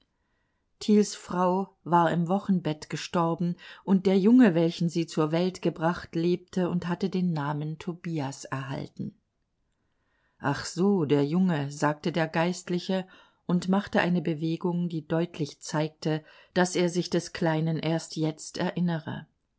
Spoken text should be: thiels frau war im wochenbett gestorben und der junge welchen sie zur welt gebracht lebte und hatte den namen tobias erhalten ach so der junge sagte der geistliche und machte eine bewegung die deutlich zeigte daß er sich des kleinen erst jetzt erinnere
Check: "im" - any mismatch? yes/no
no